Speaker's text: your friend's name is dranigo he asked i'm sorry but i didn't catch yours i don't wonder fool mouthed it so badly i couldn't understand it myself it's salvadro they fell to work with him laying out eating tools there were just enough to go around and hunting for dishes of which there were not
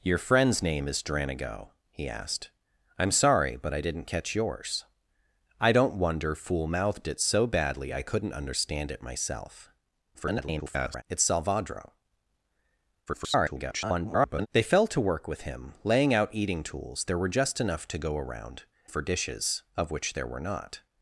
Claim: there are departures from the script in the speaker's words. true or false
true